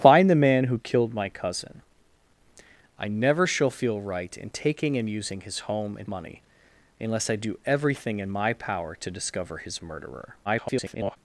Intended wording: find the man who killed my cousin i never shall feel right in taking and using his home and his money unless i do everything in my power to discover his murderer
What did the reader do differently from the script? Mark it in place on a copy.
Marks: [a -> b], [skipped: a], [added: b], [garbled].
find the man who killed my cousin i never shall feel right in taking and using his home and [skipped: his] money unless i do everything in my power to discover his murderer [garbled]